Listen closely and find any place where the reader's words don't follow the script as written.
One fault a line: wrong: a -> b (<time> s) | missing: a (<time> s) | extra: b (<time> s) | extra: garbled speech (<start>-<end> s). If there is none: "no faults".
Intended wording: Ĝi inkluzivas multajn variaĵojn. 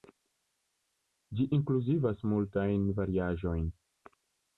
no faults